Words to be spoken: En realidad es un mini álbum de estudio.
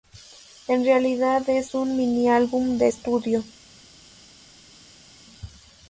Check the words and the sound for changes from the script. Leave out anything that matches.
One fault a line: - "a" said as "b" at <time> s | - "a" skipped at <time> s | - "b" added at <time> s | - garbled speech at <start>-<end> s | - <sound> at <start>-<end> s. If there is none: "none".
none